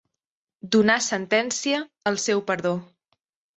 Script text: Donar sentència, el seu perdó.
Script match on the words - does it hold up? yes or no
yes